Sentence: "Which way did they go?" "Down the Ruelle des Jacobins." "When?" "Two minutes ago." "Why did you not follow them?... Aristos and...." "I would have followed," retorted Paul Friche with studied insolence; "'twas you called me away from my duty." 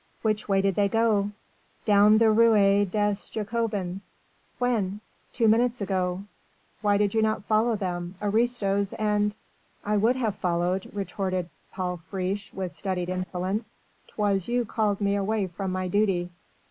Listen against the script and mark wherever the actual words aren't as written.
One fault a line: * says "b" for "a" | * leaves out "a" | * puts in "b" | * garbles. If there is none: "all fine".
all fine